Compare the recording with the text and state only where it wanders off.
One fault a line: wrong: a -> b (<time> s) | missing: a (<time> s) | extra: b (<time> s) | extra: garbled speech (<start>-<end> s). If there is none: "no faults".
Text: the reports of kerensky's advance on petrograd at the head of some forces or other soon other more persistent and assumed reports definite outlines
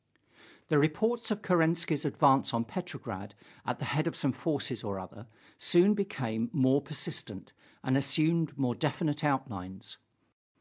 wrong: other -> became (5.9 s)
wrong: reports -> more (8.6 s)